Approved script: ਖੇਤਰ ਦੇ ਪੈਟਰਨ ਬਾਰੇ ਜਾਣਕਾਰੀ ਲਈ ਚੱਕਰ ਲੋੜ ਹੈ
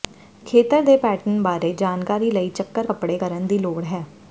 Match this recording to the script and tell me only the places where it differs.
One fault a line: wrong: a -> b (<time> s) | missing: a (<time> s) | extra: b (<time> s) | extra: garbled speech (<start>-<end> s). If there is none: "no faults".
extra: ਕੱਪੜੇ ਕਰਨ ਦੀ (2.8 s)